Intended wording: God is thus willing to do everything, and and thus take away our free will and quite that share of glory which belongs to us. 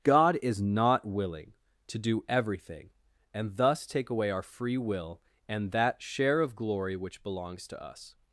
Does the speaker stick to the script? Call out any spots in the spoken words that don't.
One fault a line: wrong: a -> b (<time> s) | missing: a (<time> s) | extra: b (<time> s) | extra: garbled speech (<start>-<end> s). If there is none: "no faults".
wrong: thus -> not (0.6 s)
missing: and (3.6 s)
missing: quite (5.7 s)